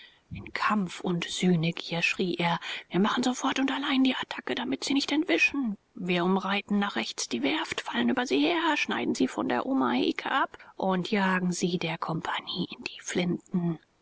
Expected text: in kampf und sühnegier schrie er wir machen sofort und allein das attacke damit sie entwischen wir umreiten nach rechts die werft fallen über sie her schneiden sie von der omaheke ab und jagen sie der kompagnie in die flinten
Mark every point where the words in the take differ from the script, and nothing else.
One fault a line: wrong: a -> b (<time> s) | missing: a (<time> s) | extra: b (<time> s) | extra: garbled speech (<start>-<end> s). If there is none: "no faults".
wrong: das -> die (4.0 s)
extra: nicht (4.9 s)